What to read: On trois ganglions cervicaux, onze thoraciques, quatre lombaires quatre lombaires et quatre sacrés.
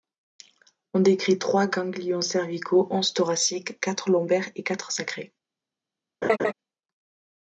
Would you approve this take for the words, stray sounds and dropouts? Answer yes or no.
no